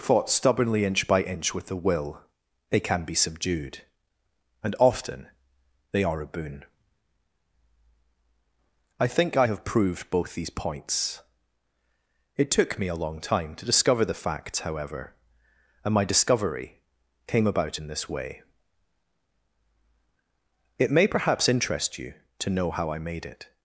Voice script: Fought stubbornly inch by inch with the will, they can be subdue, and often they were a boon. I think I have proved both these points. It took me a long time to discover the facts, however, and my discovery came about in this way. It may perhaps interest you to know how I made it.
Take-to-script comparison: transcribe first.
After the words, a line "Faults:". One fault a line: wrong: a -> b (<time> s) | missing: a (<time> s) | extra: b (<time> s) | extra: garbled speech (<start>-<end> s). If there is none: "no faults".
Fought stubbornly inch by inch with the will, they can be subdued, and often they are a boon. I think I have proved both these points. It took me a long time to discover the facts, however, and my discovery came about in this way. It may perhaps interest you to know how I made it.
Faults:
wrong: subdue -> subdued (3.1 s)
wrong: were -> are (6.0 s)